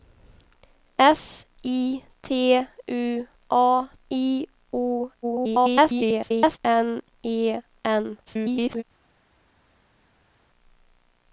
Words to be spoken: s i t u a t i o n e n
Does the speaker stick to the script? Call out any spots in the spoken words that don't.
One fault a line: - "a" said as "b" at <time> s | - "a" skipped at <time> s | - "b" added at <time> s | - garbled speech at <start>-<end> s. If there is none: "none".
- "t" skipped at 3.9 s
- garbled speech at 5.2-6.6 s
- garbled speech at 8.3-8.8 s